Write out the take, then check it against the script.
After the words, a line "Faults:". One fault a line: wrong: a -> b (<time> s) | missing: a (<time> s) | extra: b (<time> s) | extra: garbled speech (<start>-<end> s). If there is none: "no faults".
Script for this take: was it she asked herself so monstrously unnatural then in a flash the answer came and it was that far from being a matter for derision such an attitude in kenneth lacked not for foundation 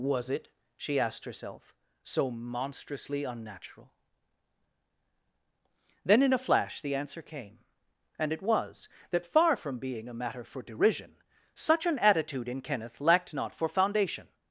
was it she asked herself so monstrously unnatural then in a flash the answer came and it was that far from being a matter for derision such an attitude in kenneth lacked not for foundation
Faults:
no faults